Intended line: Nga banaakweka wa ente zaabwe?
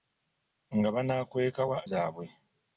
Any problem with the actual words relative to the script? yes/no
yes